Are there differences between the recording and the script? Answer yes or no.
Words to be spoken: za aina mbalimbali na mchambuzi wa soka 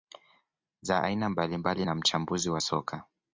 no